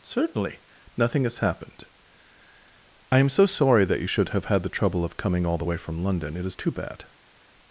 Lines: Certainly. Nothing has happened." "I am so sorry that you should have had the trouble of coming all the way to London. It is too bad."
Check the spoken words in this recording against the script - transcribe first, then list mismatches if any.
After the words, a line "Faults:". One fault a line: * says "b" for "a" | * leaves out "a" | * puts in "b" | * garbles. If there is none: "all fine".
Certainly. Nothing has happened." "I am so sorry that you should have had the trouble of coming all the way from London. It is too bad."
Faults:
* says "from" for "to"